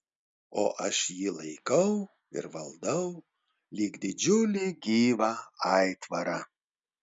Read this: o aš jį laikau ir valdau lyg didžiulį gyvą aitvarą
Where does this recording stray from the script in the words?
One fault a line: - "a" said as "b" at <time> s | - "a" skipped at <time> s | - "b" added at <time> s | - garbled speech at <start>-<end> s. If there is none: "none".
none